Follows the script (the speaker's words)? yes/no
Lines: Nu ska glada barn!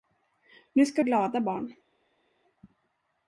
yes